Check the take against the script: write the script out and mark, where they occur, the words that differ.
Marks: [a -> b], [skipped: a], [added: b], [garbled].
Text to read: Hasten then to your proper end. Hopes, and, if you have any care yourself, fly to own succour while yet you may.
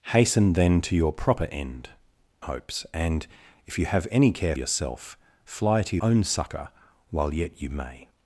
Hasten then to your proper end. Hopes, and, if you have any care yourself, fly to own succour while yet you may.